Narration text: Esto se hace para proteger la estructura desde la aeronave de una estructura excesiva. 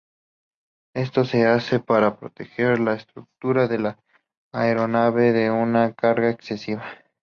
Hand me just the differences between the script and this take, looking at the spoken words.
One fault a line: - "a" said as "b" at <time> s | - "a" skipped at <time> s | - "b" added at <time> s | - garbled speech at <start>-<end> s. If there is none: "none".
- "desde" said as "de" at 3.7 s
- "estructura" said as "carga" at 5.9 s